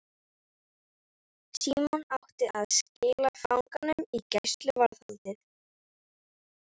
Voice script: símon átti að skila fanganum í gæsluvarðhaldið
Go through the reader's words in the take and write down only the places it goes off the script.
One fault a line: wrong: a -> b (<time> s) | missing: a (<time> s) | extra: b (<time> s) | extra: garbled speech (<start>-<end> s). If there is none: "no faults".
no faults